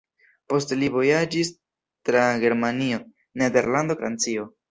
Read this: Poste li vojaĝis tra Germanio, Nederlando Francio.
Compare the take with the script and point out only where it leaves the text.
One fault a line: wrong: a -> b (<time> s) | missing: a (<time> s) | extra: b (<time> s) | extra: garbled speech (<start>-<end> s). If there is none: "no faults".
no faults